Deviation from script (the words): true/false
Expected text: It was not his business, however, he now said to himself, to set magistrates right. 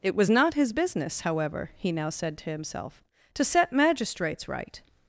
false